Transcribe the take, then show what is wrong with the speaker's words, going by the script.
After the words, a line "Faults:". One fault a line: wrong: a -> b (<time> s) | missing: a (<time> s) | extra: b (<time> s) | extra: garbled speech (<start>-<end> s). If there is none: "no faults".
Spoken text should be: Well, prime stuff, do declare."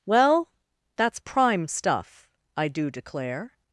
Well, that's prime stuff, I do declare."
Faults:
extra: that's (0.9 s)
extra: I (2.6 s)